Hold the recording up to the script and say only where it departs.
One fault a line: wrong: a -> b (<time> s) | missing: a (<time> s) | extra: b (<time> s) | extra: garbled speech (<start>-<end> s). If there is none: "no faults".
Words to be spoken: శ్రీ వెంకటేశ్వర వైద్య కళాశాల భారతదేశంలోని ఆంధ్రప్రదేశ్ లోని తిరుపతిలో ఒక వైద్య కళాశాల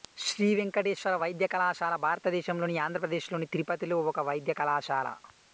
no faults